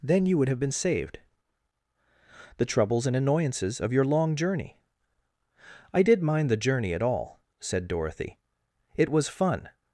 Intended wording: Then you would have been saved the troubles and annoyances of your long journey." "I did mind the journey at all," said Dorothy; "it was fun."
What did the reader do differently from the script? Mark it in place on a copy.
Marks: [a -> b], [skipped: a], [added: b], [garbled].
Then you would have been saved the troubles and annoyances of your long journey." "I did mind the journey at all," said Dorothy; "it was fun."